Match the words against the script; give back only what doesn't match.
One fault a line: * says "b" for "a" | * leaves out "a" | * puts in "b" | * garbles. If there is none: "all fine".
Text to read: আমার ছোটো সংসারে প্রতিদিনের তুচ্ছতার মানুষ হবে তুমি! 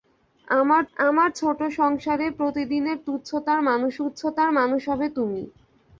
* puts in "আমার"
* puts in "তুচ্ছতার মানুষ"